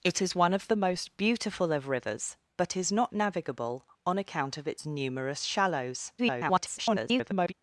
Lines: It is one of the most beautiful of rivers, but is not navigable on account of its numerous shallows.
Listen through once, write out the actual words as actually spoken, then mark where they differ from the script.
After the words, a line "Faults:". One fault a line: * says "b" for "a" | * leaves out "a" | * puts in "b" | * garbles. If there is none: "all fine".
It is one of the most beautiful of rivers, but is not navigable on account of its numerous shallows. [garbled]
Faults:
* garbles